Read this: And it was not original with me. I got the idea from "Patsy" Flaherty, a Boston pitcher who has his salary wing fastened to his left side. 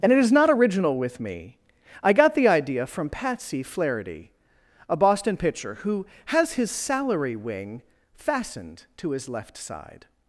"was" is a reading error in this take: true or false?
true